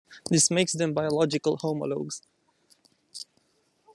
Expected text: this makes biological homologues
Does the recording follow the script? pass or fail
fail